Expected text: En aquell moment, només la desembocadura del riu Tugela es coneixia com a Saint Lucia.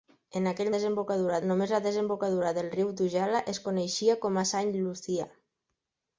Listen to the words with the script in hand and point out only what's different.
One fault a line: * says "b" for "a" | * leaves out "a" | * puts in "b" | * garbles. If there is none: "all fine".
* says "desembocadura" for "moment"